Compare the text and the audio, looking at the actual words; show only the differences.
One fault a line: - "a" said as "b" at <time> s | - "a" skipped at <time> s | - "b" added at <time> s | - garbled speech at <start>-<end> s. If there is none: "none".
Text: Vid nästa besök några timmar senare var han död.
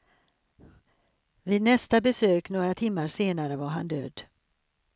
none